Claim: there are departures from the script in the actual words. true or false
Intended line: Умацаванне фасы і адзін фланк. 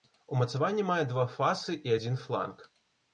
true